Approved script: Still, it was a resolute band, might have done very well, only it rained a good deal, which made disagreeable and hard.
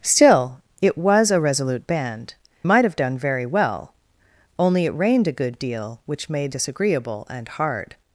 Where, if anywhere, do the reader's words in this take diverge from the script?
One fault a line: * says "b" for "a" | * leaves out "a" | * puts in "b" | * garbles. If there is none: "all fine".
all fine